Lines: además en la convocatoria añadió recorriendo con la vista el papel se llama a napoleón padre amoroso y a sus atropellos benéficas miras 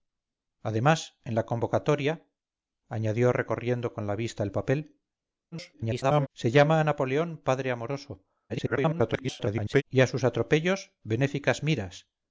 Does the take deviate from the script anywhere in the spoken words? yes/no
yes